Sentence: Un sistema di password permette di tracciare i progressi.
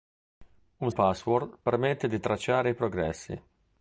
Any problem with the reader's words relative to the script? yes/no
yes